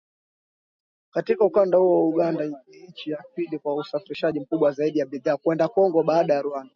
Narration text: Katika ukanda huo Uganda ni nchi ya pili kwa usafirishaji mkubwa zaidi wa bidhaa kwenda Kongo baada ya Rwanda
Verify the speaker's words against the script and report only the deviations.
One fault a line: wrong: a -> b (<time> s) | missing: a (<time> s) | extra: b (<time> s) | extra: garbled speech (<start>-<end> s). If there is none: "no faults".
no faults